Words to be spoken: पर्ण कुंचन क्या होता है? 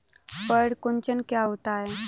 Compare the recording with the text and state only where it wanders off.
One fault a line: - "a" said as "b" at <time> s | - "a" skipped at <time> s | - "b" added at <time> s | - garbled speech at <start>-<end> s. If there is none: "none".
none